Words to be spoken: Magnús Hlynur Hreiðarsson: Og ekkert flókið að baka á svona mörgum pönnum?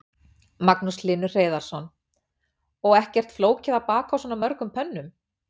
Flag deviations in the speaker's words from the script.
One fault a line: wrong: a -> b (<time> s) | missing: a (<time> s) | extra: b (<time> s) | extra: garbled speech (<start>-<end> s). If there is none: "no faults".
no faults